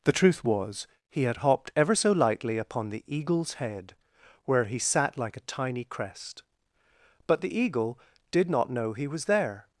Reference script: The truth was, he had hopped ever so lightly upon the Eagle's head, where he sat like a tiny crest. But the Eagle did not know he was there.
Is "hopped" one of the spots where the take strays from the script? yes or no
no